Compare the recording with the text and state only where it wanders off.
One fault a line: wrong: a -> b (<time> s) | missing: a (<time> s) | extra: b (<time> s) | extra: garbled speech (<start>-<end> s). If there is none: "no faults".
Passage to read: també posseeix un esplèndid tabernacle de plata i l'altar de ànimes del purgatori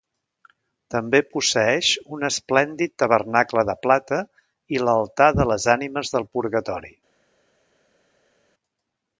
extra: les (5.5 s)